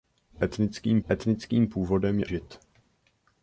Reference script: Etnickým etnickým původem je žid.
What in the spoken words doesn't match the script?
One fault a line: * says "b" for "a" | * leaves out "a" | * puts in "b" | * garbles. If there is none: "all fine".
all fine